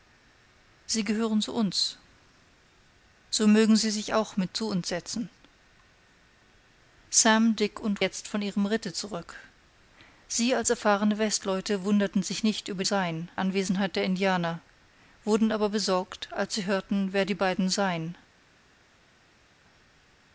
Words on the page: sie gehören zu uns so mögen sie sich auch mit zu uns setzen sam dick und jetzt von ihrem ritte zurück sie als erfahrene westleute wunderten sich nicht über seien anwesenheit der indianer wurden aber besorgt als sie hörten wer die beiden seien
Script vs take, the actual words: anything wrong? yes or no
no